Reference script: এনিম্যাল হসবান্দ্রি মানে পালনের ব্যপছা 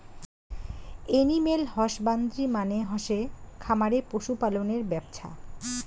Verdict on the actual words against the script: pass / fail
fail